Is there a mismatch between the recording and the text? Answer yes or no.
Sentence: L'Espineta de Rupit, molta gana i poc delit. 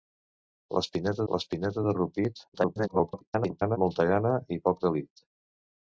yes